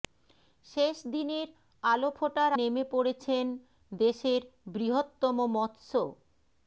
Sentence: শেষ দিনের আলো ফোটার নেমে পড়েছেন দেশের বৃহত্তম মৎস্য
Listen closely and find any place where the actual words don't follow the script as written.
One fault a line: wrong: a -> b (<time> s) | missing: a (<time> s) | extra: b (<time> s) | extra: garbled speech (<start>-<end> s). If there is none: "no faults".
no faults